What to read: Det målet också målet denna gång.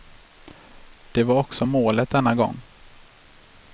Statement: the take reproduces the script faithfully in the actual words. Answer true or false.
false